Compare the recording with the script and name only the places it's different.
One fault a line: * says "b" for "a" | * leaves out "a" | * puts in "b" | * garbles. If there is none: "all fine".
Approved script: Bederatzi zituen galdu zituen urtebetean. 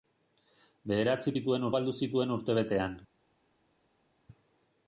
all fine